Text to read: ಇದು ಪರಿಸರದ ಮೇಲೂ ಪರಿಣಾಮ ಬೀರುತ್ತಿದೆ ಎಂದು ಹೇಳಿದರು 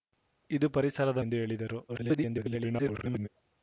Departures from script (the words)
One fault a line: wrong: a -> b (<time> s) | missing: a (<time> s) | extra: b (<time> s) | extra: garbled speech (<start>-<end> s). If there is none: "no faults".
missing: ಮೇಲೂ ಪರಿಣಾಮ ಬೀರುತ್ತಿದೆ (1.2 s)
extra: garbled speech (1.9-3.3 s)